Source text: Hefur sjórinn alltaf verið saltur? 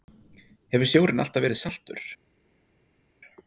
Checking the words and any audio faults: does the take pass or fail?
pass